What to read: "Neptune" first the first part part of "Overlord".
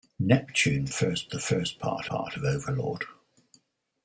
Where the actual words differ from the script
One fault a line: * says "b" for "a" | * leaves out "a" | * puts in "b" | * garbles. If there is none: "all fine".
all fine